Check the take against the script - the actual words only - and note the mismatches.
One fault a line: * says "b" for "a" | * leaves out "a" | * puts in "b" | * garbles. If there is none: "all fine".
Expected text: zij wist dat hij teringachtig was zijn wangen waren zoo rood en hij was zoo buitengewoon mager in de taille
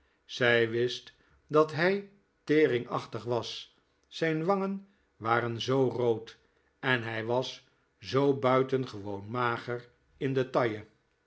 all fine